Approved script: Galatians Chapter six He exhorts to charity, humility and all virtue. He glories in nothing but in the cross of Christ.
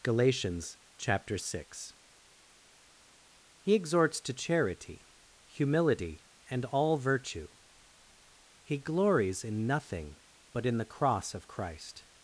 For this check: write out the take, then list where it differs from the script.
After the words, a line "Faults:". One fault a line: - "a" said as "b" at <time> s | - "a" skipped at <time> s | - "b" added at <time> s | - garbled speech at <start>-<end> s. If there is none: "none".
Galatians Chapter six He exhorts to charity, humility and all virtue. He glories in nothing but in the cross of Christ.
Faults:
none